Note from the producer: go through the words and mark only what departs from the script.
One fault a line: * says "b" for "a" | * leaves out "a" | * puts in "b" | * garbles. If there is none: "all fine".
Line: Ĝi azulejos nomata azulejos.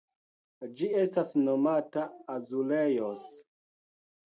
* says "estas" for "azulejos"